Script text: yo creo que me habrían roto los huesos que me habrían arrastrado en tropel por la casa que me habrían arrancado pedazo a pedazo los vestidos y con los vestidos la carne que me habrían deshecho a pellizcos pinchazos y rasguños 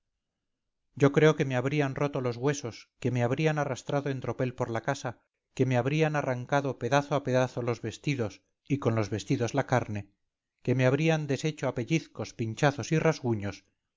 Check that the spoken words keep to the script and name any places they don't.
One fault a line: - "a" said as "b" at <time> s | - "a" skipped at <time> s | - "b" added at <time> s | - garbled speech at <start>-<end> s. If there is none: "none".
none